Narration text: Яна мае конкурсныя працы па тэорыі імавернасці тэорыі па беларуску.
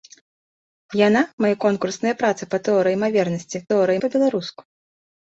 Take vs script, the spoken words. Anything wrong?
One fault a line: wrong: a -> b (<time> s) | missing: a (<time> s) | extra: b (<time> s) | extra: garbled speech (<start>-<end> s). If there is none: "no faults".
no faults